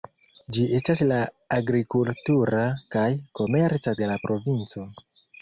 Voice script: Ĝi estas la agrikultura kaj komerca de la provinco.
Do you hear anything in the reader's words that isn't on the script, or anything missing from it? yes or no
no